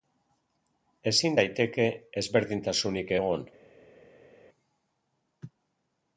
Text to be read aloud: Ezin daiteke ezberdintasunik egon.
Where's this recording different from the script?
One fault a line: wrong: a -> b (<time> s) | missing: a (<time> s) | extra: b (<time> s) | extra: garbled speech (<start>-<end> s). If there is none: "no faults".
no faults